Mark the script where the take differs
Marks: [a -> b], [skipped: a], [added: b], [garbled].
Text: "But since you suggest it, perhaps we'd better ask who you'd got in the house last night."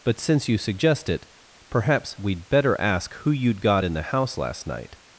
"But since you suggest it, perhaps we'd better ask who you'd got in the house last night."